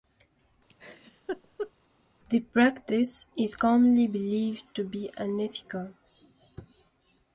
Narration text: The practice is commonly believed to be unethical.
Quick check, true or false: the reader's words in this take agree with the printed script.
true